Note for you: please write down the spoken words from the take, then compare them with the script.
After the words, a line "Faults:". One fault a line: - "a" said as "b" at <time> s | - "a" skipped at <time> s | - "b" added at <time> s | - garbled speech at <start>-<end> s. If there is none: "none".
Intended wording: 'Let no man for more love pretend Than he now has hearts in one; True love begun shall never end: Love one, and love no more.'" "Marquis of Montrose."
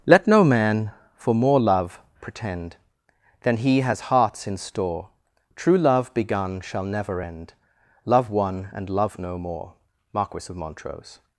'Let no man for more love pretend Than he has hearts in store; True love begun shall never end: Love one, and love no more.'" "Marquis of Montrose."
Faults:
- "now" skipped at 3.8 s
- "one" said as "store" at 4.6 s